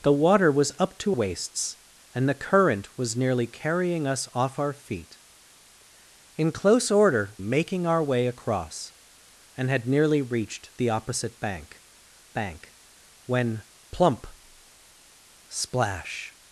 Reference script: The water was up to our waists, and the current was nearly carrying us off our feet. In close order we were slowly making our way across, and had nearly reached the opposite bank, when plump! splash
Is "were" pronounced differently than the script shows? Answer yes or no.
yes